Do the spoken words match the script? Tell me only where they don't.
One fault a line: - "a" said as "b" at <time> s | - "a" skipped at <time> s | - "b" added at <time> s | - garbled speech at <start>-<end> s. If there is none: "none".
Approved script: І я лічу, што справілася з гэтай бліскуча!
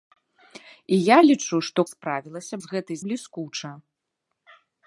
none